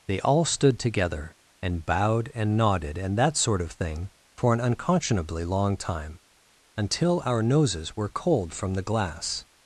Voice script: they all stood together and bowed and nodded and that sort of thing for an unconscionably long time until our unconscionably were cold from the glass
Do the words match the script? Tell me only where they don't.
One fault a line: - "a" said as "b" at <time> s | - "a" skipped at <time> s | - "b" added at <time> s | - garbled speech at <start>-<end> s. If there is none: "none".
- "unconscionably" said as "noses" at 7.4 s